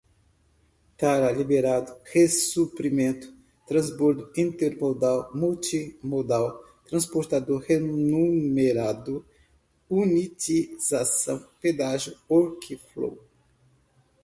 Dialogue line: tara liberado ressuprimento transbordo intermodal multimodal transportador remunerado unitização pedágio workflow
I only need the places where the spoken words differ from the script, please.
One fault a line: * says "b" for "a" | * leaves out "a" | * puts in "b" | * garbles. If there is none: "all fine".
all fine